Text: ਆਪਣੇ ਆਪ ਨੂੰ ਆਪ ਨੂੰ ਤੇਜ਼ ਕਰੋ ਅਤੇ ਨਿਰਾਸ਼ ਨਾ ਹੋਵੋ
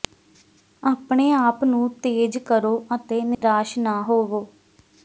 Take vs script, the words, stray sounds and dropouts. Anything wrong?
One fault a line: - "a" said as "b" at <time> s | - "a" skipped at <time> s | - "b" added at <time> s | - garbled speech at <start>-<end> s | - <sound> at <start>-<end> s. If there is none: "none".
- "ਆਪ ਨੂੰ" skipped at 1.9 s
- dropout at 3.3-3.4 s